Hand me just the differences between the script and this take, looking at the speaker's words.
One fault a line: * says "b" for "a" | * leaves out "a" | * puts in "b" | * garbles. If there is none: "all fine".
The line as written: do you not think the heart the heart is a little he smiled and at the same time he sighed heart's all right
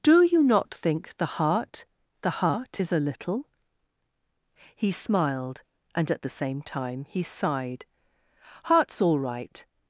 all fine